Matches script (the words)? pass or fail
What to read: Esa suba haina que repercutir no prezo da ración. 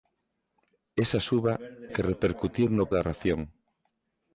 fail